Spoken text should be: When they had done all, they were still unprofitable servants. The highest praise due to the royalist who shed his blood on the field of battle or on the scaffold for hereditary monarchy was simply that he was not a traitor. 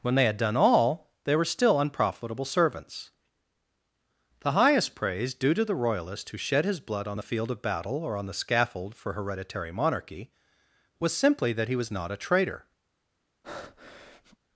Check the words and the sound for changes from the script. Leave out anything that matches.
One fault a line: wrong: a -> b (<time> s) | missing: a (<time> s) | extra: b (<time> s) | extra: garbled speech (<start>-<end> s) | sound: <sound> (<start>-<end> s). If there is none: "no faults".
sound: breath (13.4-14.4 s)